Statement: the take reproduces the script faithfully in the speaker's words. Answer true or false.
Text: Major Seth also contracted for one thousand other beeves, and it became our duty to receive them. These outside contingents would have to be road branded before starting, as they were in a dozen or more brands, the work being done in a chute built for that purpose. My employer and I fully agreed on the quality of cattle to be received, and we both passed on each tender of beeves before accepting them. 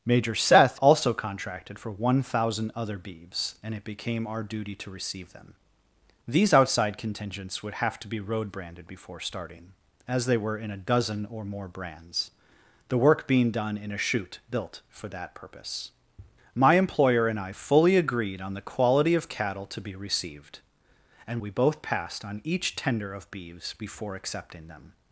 true